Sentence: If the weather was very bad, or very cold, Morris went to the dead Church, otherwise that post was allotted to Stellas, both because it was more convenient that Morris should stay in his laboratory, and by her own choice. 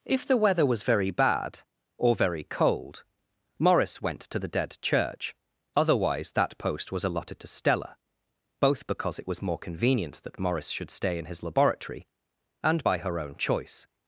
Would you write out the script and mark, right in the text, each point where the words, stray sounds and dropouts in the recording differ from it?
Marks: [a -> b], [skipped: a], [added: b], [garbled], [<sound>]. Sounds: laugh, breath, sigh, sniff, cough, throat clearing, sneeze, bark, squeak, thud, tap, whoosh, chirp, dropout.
If the weather was very bad, or very cold, Morris went to the dead Church, otherwise that post was allotted to [Stellas, -> Stella] both because it was more convenient that Morris should stay in his laboratory, and by her own choice.